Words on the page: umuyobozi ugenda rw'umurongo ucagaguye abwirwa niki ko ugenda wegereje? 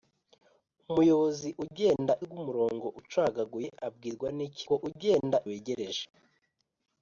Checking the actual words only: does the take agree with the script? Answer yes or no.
yes